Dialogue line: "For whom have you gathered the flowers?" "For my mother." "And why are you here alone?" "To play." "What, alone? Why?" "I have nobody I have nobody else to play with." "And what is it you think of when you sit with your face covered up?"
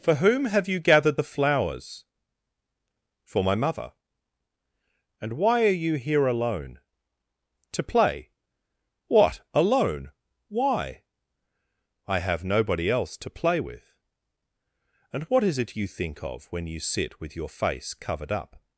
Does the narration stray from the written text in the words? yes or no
yes